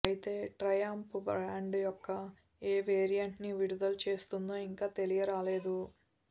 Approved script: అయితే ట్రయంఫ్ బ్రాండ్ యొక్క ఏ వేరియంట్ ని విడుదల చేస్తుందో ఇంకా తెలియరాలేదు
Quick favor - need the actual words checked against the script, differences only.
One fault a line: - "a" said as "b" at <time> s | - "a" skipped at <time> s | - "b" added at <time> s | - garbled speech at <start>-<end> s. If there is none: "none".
none